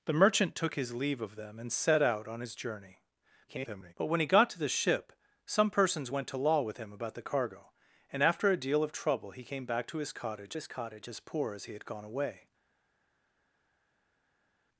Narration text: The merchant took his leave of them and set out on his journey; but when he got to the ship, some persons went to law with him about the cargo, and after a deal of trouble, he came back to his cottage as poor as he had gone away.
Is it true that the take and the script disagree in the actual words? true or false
true